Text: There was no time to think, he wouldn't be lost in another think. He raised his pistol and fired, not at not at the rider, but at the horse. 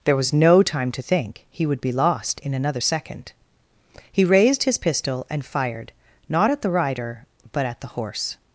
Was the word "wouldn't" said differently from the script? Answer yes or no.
yes